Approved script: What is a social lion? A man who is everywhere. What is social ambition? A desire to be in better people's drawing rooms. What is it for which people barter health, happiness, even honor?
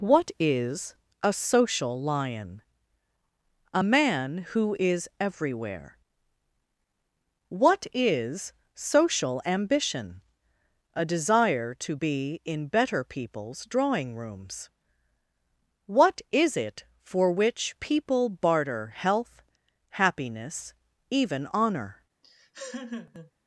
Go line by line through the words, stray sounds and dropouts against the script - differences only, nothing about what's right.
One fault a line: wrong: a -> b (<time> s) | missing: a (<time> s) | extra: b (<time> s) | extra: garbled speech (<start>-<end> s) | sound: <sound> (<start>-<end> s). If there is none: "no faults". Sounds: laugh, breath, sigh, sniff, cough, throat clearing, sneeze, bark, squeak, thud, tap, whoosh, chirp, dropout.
sound: laugh (22.2-23.3 s)